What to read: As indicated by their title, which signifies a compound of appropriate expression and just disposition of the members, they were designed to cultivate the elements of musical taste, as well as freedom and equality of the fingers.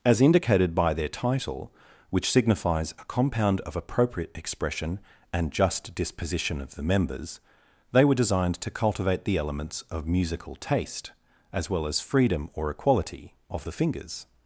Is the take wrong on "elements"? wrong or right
right